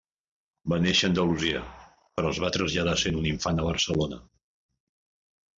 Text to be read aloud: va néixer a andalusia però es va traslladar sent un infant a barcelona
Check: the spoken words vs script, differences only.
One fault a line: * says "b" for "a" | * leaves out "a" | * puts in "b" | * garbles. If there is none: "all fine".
all fine